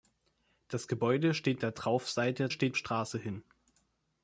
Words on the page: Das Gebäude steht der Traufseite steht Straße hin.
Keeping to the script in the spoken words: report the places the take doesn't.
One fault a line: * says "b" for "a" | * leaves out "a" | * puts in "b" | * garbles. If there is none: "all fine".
all fine